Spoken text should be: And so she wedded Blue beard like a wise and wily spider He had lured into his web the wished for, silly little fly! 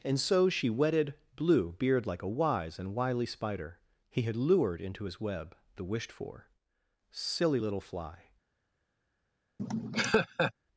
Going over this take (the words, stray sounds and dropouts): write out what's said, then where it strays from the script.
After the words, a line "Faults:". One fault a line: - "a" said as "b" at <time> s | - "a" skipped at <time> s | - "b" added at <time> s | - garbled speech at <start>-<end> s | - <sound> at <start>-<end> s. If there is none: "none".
And so she wedded Blue beard like a wise and wily spider He had lured into his web the wished for, silly little fly!
Faults:
- laugh at 9.6-10.5 s